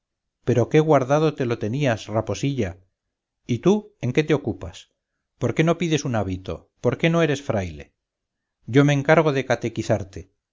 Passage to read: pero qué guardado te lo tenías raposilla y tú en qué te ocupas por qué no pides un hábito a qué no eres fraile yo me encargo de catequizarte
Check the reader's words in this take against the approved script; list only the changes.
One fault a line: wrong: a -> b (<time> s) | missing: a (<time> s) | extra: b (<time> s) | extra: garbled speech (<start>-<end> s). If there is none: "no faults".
wrong: a -> por (6.8 s)